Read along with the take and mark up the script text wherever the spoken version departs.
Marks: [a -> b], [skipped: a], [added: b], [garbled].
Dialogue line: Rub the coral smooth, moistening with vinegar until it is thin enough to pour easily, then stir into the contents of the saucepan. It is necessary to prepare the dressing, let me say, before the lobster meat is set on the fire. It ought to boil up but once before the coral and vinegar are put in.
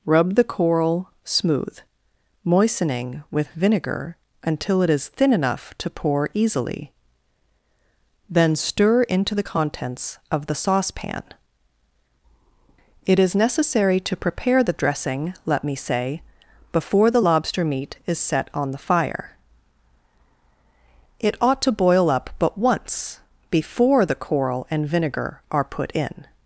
Rub the coral smooth, moistening with vinegar until it is thin enough to pour easily, then stir into the contents of the saucepan. It is necessary to prepare the dressing, let me say, before the lobster meat is set on the fire. It ought to boil up but once before the coral and vinegar are put in.